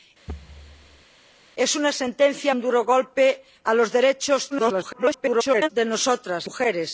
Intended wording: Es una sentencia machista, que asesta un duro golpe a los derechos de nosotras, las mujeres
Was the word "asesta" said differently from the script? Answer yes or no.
yes